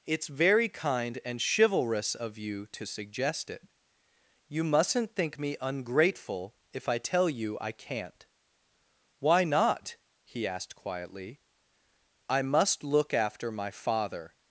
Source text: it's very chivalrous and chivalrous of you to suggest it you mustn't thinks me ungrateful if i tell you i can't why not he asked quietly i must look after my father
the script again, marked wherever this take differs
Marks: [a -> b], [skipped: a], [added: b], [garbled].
it's very [chivalrous -> kind] and chivalrous of you to suggest it you mustn't [thinks -> think] me ungrateful if i tell you i can't why not he asked quietly i must look after my father